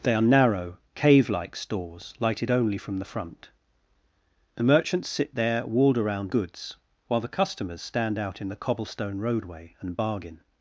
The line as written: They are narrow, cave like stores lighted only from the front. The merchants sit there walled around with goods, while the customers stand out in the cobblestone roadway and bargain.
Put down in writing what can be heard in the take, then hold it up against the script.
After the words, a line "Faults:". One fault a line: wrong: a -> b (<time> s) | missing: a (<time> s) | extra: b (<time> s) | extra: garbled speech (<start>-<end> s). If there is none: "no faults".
They are narrow, cave like stores lighted only from the front. The merchants sit there walled around goods, while the customers stand out in the cobblestone roadway and bargain.
Faults:
missing: with (6.3 s)